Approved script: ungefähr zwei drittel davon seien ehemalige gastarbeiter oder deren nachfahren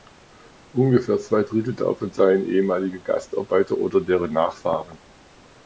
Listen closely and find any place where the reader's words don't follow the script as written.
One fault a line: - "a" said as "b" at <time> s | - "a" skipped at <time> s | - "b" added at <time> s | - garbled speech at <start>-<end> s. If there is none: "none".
none